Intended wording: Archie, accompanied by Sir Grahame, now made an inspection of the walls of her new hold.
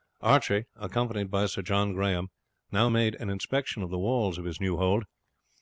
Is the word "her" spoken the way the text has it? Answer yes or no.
no